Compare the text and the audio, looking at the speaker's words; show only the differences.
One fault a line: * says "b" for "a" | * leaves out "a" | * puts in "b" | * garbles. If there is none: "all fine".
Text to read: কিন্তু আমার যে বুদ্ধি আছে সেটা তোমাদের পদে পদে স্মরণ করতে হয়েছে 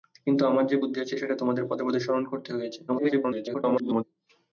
* garbles